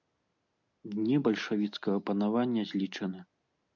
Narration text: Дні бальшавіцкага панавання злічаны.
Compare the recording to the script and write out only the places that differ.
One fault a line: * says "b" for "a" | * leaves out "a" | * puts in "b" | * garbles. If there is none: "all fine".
all fine